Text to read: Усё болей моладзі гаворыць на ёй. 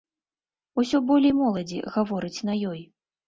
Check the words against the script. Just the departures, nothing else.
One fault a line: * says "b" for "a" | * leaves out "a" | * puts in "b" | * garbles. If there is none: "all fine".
all fine